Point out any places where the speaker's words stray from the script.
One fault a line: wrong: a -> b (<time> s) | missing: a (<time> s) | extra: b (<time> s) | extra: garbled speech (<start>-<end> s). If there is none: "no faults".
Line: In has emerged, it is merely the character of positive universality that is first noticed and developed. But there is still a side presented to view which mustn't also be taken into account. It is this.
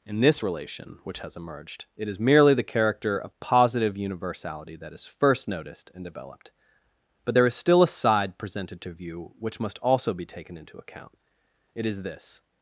extra: this relation which (0.2 s)
wrong: mustn't -> must (9.6 s)